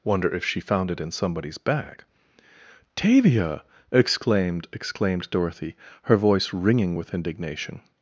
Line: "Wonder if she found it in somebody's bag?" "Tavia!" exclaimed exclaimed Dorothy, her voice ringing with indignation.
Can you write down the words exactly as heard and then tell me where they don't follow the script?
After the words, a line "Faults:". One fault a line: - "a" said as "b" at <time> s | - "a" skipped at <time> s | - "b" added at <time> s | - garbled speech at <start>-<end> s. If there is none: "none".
"Wonder if she found it in somebody's bag?" "Tavia!" exclaimed exclaimed Dorothy, her voice ringing with indignation.
Faults:
none